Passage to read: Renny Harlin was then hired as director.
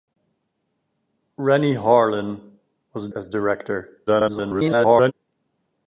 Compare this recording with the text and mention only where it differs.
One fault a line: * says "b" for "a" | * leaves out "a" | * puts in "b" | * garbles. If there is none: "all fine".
* leaves out "then hired"
* garbles